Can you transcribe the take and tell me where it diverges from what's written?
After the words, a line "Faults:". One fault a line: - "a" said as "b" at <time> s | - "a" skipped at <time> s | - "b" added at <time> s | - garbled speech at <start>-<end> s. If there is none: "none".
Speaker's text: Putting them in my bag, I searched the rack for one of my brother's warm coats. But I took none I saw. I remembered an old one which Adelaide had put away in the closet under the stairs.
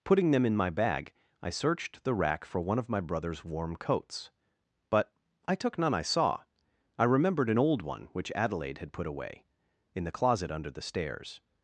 Putting them in my bag, I searched the rack for one of my brother's warm coats. But I took none I saw. I remembered an old one which Adelaide had put away in the closet under the stairs.
Faults:
none